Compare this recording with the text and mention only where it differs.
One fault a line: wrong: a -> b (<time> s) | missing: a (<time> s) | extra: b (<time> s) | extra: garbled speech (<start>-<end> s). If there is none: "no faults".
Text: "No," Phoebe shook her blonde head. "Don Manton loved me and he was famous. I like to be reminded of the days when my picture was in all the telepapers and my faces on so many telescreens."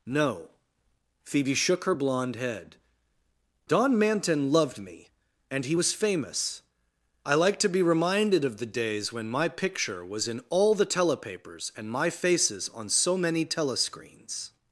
no faults